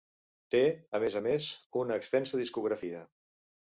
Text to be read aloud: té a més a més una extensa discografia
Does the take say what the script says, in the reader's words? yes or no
yes